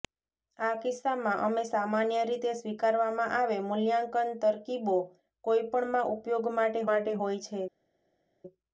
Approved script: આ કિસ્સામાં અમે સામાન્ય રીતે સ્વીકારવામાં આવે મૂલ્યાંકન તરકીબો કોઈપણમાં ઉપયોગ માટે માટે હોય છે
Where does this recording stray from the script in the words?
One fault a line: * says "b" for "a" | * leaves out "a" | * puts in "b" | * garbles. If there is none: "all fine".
all fine